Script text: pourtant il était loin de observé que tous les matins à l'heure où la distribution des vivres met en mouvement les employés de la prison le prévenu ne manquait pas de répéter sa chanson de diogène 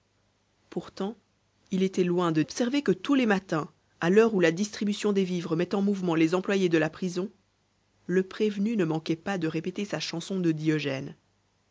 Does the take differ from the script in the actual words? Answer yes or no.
no